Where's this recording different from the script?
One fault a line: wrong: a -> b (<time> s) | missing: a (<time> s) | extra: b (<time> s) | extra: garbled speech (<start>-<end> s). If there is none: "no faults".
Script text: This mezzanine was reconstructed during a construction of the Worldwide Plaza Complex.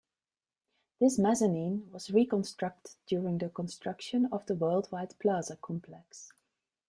wrong: a -> the (3.4 s)